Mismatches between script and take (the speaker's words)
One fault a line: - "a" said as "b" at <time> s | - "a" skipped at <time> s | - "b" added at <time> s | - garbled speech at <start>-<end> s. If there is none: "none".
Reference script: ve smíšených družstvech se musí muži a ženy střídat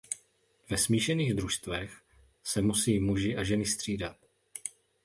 none